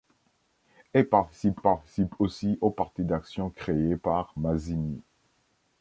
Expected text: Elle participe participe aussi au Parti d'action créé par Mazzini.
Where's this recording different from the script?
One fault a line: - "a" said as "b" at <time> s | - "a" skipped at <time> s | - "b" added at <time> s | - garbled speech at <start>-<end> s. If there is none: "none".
none